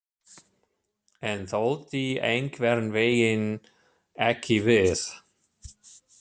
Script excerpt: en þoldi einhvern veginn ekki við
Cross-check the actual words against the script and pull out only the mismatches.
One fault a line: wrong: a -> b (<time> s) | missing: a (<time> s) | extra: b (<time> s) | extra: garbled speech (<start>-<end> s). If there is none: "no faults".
no faults